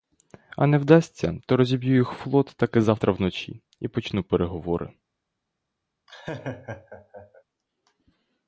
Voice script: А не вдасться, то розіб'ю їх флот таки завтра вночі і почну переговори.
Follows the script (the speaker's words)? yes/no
yes